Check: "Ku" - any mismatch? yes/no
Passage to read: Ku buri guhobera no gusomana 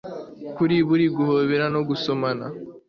yes